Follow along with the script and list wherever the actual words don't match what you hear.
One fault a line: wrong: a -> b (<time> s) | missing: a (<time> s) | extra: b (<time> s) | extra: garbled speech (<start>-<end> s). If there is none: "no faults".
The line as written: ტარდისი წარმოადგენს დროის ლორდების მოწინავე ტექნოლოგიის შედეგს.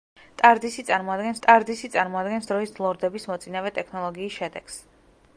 extra: ტარდისი წარმოადგენს (1.5 s)